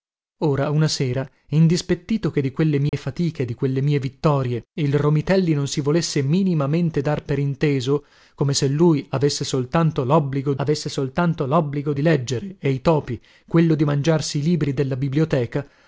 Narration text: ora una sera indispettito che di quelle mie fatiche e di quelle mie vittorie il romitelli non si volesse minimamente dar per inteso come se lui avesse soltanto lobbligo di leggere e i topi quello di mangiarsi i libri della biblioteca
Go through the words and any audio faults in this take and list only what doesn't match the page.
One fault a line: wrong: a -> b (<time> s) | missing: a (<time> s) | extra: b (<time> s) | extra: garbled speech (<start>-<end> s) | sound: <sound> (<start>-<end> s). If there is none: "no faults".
sound: dropout (2.9-2.9 s)
extra: avesse soltanto lobbligo (10.6 s)